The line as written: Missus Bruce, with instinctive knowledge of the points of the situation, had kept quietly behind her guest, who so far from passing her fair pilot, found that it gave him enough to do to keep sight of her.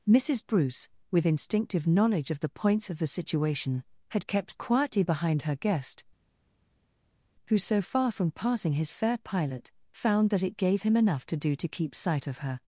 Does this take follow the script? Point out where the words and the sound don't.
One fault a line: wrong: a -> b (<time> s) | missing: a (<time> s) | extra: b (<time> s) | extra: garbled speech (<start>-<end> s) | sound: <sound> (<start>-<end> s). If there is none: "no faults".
wrong: her -> his (8.7 s)